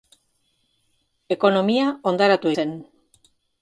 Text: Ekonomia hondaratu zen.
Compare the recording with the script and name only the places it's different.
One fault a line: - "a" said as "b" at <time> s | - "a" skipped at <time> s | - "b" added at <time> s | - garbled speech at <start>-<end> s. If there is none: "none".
none